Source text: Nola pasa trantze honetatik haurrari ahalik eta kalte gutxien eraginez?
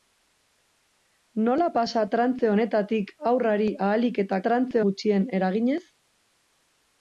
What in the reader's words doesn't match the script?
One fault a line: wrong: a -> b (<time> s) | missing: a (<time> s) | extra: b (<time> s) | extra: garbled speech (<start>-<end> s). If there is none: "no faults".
wrong: kalte -> trantze (4.4 s)